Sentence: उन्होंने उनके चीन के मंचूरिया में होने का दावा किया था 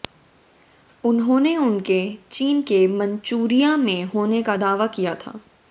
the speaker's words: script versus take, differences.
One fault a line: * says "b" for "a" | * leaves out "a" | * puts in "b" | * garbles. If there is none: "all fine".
all fine